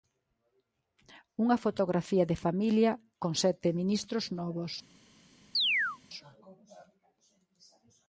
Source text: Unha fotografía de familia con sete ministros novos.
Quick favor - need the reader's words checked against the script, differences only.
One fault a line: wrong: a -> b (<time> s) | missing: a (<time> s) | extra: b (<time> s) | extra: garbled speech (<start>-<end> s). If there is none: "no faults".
no faults